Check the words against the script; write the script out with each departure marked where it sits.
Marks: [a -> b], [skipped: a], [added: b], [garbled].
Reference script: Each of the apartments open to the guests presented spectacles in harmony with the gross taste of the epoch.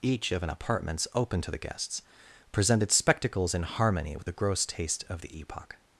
Each of [the -> an] apartments open to the guests presented spectacles in harmony with the gross taste of the epoch.